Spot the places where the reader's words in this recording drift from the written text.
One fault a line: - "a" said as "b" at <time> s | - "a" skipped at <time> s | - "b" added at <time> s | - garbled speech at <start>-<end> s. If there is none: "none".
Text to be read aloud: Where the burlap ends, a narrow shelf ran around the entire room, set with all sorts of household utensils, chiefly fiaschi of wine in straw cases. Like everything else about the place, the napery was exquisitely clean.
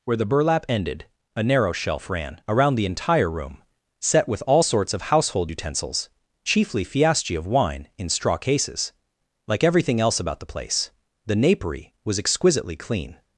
- "ends" said as "ended" at 0.7 s